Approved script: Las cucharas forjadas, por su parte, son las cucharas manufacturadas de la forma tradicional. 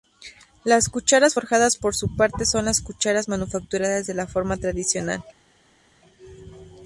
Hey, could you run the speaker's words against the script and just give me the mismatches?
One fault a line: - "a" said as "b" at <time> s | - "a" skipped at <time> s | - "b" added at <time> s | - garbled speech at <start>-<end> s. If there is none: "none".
none